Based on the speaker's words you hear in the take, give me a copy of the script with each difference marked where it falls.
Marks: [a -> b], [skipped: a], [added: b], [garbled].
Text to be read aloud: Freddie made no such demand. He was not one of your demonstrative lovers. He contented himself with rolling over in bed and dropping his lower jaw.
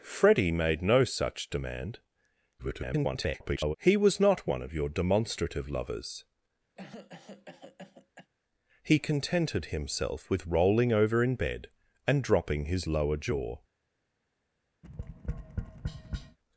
Freddie made no such demand. [garbled] He was not one of your demonstrative lovers. He contented himself with rolling over in bed and dropping his lower jaw.